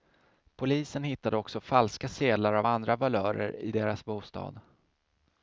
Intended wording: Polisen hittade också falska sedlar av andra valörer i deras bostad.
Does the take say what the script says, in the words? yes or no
yes